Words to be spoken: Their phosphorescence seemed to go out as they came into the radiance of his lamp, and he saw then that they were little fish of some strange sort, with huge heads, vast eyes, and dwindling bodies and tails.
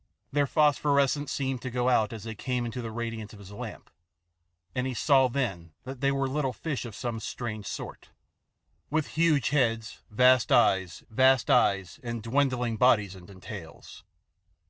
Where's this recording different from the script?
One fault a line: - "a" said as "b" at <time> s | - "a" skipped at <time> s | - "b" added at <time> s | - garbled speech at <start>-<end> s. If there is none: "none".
- "vast eyes" added at 11.1 s
- "and" added at 13.3 s